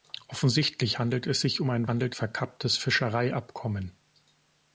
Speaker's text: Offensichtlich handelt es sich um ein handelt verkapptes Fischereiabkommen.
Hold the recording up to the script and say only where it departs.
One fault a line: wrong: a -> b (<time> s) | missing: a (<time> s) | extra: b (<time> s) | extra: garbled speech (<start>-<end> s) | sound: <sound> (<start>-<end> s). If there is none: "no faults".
no faults